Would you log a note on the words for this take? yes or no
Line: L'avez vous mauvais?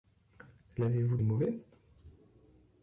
no